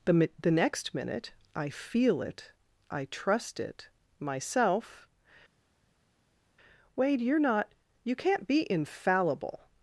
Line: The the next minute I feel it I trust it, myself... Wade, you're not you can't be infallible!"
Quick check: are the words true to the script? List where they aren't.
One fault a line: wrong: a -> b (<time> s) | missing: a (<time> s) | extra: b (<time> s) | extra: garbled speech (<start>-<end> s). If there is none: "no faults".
no faults